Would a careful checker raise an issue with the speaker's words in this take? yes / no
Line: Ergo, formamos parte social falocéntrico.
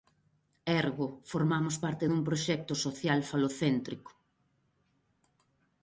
yes